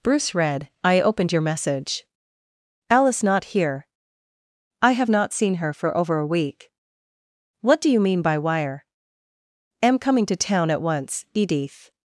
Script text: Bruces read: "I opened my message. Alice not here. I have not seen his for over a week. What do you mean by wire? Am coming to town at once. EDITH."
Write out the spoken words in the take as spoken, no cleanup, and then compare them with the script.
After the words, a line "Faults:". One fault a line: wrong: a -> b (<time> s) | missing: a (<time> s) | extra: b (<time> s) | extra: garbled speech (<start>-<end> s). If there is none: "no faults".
Bruce read: "I opened your message. Alice not here. I have not seen her for over a week. What do you mean by wire? Am coming to town at once. EDITH."
Faults:
wrong: Bruces -> Bruce (0.0 s)
wrong: my -> your (1.3 s)
wrong: his -> her (5.6 s)